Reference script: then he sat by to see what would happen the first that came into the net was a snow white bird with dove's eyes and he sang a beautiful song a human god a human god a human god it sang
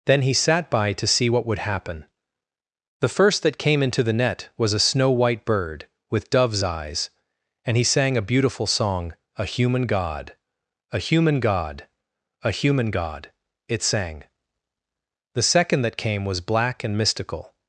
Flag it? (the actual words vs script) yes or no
yes